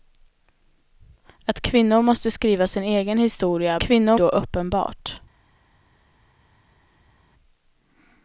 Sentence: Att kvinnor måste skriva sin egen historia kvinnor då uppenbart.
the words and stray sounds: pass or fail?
pass